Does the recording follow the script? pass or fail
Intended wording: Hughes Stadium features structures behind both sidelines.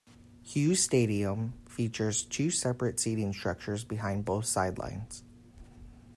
fail